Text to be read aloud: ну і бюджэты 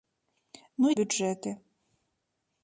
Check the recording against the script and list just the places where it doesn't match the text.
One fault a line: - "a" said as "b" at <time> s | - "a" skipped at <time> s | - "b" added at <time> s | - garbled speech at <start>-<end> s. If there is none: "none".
none